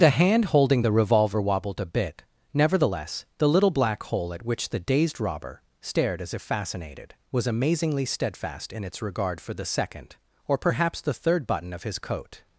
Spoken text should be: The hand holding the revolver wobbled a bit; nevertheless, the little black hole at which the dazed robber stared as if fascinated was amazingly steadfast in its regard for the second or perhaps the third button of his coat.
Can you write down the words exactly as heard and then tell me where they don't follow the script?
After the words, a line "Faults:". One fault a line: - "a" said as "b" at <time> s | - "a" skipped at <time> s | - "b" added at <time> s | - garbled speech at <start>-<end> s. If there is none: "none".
The hand holding the revolver wobbled a bit; nevertheless, the little black hole at which the dazed robber stared as if fascinated was amazingly steadfast in its regard for the second or perhaps the third button of his coat.
Faults:
none